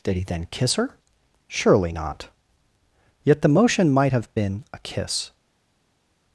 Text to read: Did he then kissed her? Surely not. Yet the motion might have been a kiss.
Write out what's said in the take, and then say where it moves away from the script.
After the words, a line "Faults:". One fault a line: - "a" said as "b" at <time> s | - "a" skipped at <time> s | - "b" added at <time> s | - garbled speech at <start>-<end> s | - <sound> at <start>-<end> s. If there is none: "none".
Did he then kiss her? Surely not. Yet the motion might have been a kiss.
Faults:
- "kissed" said as "kiss" at 0.5 s